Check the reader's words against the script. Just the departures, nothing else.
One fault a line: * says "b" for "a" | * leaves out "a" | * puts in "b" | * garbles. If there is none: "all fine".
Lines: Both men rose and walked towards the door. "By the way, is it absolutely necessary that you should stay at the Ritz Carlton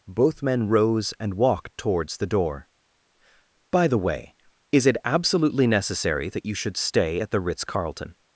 all fine